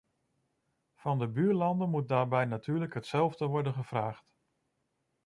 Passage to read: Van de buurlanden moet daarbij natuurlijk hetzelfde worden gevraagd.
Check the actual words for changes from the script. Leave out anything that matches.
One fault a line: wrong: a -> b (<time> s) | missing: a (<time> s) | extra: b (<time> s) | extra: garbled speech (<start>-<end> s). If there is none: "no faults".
no faults